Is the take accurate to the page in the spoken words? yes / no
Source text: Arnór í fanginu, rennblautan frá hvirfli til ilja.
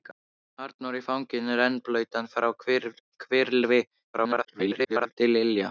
no